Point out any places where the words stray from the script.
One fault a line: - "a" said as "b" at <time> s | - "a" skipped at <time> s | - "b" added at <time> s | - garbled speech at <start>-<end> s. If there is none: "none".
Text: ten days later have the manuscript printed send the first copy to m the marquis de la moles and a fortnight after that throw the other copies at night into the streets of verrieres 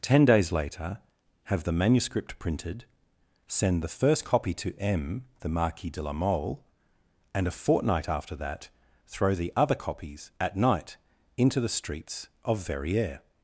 - "moles" said as "mole" at 6.1 s